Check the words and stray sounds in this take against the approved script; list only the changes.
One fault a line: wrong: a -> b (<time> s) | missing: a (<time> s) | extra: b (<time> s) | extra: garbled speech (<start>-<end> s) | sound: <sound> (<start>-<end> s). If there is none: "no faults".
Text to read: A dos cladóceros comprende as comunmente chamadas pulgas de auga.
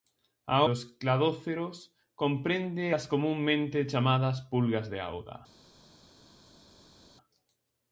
no faults